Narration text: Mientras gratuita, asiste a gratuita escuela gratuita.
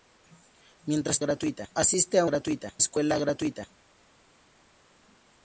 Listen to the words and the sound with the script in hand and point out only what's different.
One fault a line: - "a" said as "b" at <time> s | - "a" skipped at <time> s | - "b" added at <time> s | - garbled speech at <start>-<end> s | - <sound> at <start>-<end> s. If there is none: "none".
none